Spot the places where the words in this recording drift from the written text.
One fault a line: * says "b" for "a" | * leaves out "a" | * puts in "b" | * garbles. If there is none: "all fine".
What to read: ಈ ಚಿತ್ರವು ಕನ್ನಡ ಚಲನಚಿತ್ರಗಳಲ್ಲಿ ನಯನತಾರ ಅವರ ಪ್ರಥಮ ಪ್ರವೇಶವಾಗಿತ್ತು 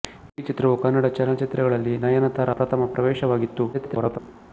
* leaves out "ಅವರ"
* garbles